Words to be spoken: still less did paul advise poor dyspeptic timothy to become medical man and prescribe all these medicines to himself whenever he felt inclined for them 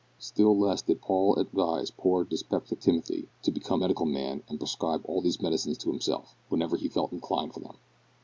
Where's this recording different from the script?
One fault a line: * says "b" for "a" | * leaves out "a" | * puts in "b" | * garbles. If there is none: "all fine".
all fine